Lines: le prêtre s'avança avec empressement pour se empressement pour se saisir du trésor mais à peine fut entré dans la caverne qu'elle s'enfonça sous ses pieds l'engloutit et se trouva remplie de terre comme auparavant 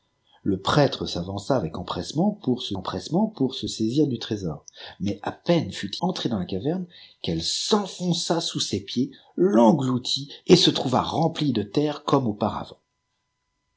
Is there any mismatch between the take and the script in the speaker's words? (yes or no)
no